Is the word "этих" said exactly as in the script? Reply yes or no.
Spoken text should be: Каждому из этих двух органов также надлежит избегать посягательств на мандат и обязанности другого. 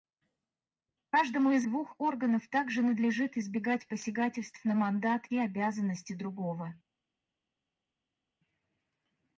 no